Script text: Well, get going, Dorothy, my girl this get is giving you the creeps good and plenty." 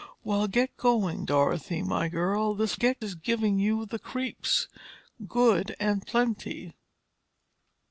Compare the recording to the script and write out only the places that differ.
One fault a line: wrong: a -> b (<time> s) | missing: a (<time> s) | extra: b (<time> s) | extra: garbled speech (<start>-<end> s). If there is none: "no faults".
no faults